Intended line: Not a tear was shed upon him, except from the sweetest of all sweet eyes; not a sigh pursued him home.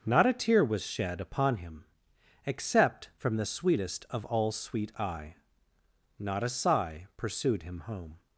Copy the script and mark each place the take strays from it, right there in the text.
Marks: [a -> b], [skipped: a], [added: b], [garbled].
Not a tear was shed upon him, except from the sweetest of all sweet [eyes; -> eye] not a sigh pursued him home.